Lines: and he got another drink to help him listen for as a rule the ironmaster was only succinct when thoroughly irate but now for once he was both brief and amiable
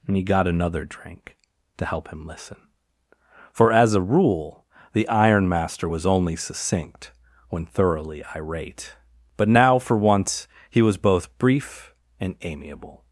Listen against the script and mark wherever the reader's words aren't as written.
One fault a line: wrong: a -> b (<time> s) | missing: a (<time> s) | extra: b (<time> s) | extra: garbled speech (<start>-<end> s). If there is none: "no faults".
no faults